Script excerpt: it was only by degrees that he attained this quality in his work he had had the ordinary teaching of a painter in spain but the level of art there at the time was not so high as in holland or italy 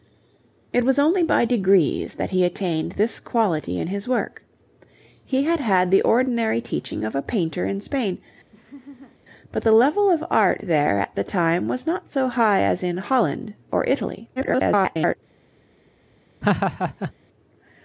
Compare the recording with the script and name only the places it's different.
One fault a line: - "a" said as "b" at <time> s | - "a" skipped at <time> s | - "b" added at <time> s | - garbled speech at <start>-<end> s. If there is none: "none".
- garbled speech at 14.4-15.2 s